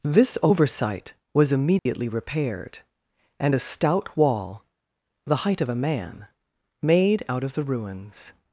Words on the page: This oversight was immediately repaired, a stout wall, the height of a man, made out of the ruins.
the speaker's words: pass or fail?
fail